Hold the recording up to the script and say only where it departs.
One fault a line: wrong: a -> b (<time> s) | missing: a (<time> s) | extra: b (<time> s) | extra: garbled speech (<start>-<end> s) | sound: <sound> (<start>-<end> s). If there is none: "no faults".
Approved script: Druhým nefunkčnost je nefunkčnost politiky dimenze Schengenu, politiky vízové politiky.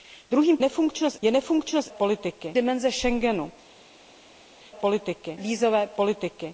no faults